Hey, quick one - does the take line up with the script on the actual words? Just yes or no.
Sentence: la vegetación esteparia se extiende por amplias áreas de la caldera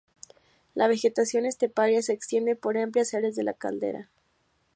yes